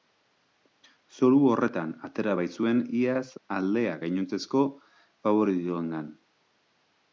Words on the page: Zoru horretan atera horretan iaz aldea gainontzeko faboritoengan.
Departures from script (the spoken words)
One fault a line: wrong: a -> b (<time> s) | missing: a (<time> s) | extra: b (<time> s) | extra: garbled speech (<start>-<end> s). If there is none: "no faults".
wrong: horretan -> baitzuen (2.4 s)